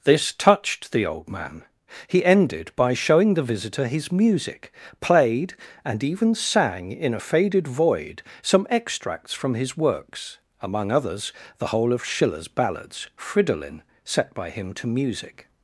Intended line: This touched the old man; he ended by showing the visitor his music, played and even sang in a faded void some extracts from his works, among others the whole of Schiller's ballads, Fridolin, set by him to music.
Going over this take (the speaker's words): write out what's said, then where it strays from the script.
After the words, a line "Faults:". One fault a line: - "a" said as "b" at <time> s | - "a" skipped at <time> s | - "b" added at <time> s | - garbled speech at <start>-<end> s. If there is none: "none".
This touched the old man; he ended by showing the visitor his music, played and even sang in a faded void some extracts from his works, among others the whole of Schiller's ballads, Fridolin, set by him to music.
Faults:
none